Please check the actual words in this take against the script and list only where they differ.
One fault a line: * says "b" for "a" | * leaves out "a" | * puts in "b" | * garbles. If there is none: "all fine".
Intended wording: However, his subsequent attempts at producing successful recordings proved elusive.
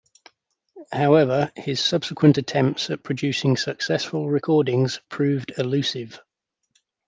all fine